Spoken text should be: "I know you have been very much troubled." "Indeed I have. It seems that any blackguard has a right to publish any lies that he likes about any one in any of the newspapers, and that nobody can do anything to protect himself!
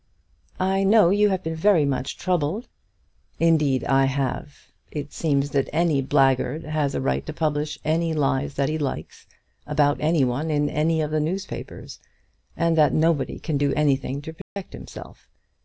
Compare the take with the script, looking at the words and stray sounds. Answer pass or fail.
fail